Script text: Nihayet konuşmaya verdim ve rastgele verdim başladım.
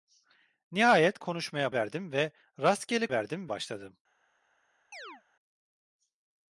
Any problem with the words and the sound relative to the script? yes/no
yes